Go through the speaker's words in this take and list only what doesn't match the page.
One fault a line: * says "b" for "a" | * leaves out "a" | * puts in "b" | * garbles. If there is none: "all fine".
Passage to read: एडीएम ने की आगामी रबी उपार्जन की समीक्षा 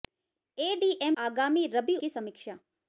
* leaves out "ने की"
* leaves out "उपार्जन"